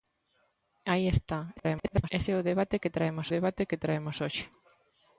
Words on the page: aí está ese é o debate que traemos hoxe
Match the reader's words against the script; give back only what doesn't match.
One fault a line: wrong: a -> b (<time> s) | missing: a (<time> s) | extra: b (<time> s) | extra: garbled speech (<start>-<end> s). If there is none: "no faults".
extra: garbled speech (1.6-2.1 s)
extra: debate que traemos (3.3 s)